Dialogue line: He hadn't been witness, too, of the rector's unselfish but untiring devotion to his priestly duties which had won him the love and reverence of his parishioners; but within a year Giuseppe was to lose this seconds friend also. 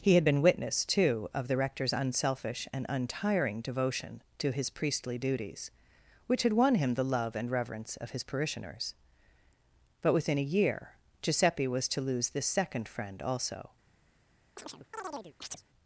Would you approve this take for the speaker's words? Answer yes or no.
no